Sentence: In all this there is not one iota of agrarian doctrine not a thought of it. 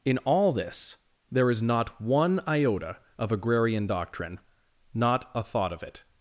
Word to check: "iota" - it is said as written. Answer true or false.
true